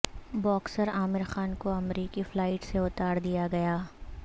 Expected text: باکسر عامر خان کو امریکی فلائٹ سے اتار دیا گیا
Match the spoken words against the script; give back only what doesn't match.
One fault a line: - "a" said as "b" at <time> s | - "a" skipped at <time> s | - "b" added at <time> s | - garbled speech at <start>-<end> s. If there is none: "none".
none